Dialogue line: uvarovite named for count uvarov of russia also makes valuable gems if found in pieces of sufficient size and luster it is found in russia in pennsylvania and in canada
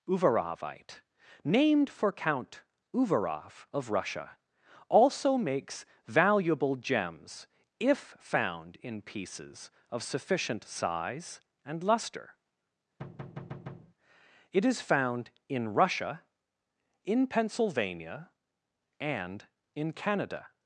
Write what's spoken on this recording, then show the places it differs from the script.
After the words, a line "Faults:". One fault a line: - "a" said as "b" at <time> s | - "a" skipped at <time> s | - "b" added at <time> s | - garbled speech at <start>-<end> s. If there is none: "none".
uvarovite named for count uvarov of russia also makes valuable gems if found in pieces of sufficient size and luster it is found in russia in pennsylvania and in canada
Faults:
none